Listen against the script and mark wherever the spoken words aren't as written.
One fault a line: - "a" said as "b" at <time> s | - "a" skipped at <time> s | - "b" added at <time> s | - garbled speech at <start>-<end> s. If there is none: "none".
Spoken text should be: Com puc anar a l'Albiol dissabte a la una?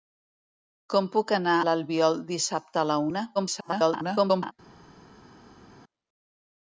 - "a" skipped at 1.6 s
- garbled speech at 3.4-4.5 s